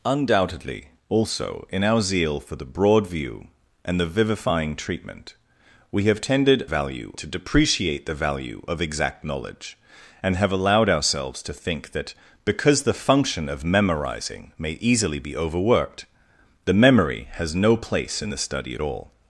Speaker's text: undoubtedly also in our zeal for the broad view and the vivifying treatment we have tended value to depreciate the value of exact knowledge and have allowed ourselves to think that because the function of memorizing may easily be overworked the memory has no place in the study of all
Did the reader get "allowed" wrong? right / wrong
right